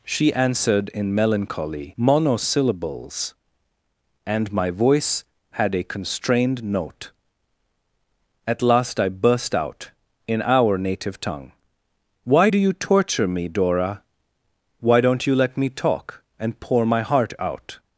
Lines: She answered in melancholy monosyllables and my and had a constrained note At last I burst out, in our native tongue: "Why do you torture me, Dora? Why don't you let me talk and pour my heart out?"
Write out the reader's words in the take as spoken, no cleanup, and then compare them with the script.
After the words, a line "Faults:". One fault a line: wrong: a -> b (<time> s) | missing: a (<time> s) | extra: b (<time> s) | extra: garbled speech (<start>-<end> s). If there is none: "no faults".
She answered in melancholy monosyllables and my voice had a constrained note At last I burst out, in our native tongue: "Why do you torture me, Dora? Why don't you let me talk and pour my heart out?"
Faults:
wrong: and -> voice (4.7 s)